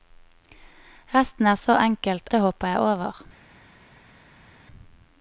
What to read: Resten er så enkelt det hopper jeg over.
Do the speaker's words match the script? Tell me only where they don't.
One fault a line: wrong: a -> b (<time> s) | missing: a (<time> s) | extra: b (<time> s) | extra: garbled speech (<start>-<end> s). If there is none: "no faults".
no faults